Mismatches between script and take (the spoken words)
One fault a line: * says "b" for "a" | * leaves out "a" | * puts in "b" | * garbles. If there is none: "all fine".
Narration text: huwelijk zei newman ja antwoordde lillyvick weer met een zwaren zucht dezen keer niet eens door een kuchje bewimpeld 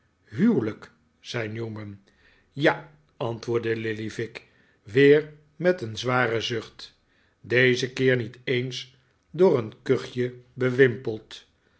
all fine